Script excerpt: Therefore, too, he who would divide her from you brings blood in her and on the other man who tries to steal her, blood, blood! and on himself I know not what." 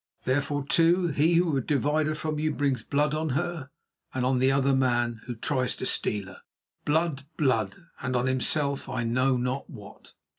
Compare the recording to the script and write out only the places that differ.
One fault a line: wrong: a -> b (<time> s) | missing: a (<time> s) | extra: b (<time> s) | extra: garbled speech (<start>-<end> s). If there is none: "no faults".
wrong: in -> on (3.1 s)